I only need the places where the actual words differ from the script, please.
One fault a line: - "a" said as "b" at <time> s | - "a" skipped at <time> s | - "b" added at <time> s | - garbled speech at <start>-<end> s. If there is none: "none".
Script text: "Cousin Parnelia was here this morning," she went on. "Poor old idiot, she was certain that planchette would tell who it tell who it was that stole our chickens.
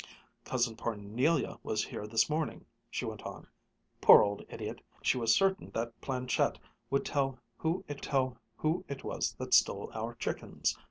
none